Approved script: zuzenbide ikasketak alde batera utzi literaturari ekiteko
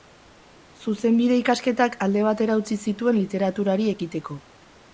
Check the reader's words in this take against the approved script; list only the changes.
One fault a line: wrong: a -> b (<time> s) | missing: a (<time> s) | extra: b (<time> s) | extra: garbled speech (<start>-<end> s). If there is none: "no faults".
extra: zituen (2.9 s)